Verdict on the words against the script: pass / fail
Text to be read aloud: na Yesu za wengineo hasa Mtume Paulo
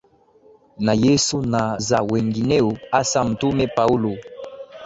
fail